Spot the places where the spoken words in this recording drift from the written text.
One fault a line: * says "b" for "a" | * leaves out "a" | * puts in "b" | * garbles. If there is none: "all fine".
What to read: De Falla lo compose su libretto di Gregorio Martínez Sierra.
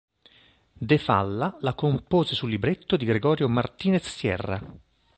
* says "la" for "lo"